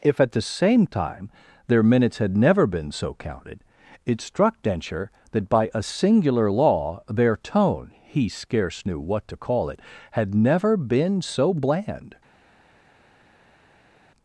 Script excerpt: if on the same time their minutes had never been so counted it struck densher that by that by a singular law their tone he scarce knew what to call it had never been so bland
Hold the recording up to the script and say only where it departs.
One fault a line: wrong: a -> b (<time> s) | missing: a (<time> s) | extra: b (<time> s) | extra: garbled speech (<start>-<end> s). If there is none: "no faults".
wrong: on -> at (0.2 s)
missing: that by (5.7 s)